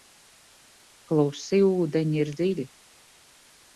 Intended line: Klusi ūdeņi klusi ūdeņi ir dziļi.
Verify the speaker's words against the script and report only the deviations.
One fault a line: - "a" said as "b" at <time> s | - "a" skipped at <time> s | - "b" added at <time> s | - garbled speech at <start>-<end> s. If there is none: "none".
- "klusi ūdeņi" skipped at 2.2 s